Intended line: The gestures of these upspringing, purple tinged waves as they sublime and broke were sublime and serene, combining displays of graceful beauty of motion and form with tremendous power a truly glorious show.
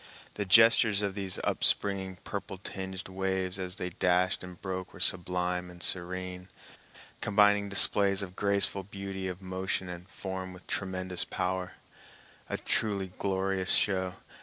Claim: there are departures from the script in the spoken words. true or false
true